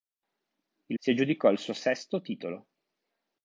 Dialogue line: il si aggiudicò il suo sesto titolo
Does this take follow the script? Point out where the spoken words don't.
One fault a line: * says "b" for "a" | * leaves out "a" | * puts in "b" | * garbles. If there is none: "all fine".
all fine